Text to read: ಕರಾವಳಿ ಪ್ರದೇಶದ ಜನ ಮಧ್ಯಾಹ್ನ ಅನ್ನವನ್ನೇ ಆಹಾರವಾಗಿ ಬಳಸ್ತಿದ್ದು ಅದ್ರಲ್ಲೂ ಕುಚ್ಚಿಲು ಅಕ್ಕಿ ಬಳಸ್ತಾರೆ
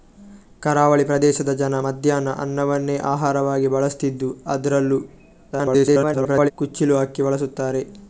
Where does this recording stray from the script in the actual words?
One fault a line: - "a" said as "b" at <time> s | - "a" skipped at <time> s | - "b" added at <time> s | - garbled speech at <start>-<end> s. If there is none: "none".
- garbled speech at 5.5-6.5 s